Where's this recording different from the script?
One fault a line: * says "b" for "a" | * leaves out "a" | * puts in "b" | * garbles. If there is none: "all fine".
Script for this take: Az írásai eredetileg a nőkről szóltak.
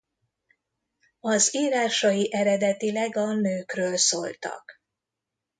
all fine